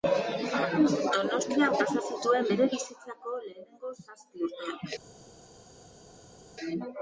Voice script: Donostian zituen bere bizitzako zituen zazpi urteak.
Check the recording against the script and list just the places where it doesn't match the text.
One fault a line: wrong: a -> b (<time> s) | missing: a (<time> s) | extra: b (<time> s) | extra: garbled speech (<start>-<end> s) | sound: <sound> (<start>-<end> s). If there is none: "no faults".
extra: pasa (1.8 s)
wrong: zituen -> lehenengo (3.4 s)